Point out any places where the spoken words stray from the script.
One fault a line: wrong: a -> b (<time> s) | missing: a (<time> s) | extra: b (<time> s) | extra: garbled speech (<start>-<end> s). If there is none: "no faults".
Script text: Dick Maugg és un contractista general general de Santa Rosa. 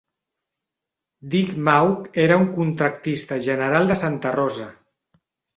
wrong: és -> era (2.2 s)
missing: general (3.9 s)